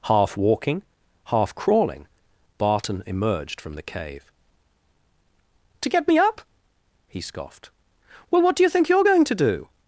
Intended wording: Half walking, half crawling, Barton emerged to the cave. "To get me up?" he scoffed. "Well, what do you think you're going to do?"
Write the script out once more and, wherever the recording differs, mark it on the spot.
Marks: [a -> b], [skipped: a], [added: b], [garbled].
Half walking, half crawling, Barton emerged [to -> from] the cave. "To get me up?" he scoffed. "Well, what do you think you're going to do?"